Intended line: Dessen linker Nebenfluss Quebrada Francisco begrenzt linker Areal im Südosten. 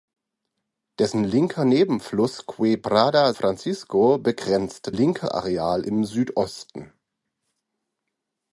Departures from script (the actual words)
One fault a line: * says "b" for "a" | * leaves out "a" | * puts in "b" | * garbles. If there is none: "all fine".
all fine